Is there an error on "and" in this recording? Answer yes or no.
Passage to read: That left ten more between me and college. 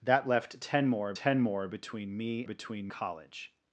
yes